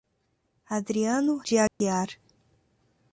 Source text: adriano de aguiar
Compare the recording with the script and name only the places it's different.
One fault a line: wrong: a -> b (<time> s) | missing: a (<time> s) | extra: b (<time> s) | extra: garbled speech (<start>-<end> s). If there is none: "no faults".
no faults